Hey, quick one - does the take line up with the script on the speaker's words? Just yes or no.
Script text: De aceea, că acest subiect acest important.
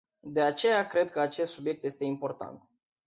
no